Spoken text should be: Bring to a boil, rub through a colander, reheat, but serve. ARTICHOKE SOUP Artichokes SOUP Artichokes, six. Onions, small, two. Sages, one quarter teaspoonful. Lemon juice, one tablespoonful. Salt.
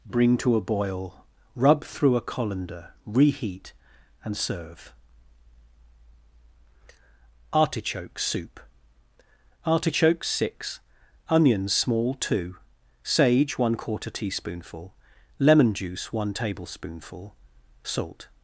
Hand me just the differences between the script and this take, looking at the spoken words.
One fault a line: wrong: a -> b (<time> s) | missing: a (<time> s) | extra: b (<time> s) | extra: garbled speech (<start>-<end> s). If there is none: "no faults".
wrong: but -> and (4.2 s)
missing: SOUP Artichokes (10.3 s)
wrong: Sages -> Sage (13.0 s)